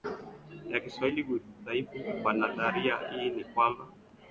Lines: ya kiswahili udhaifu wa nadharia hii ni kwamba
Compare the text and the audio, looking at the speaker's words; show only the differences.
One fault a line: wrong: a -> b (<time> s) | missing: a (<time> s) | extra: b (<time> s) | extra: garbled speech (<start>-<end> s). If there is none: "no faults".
no faults